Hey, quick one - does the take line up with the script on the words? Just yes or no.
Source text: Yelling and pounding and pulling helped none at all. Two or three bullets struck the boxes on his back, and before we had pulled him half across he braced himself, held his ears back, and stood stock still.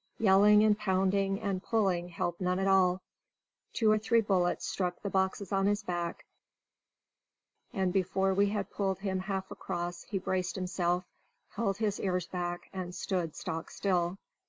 yes